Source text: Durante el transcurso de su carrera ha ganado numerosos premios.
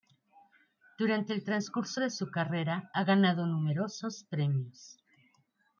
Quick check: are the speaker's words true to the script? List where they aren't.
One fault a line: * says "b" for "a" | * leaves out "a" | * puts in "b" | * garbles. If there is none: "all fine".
all fine